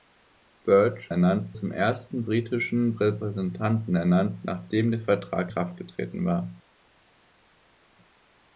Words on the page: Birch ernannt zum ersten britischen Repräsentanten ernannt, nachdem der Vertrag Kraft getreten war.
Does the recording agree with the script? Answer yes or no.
yes